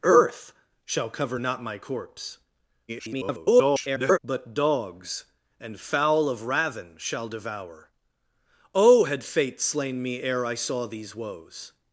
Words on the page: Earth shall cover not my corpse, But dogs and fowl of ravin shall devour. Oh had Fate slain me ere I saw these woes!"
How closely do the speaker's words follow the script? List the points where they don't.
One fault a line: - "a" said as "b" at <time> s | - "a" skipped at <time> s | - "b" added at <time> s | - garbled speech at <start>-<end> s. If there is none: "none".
- garbled speech at 2.9-4.2 s